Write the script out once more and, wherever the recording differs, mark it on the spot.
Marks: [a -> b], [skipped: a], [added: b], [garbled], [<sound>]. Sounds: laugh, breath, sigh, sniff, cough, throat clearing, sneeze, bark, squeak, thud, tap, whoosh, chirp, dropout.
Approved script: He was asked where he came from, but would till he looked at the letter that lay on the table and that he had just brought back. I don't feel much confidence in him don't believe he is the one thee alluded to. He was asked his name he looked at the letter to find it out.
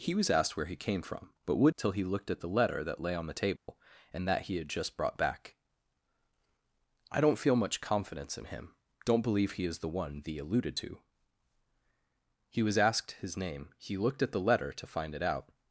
He was asked where he came from, but would till he looked at the letter that lay on the table [dropout] and that he had just brought back. I don't feel much confidence in him don't believe he is the one thee alluded to. He was asked his name he looked at the letter to find it out.